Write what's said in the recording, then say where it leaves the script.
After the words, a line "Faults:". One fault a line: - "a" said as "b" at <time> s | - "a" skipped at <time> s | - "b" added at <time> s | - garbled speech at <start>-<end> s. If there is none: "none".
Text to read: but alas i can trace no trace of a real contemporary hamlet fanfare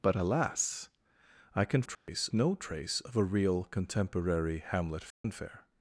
but alas i can trace no trace of a real contemporary hamlet fanfare
Faults:
none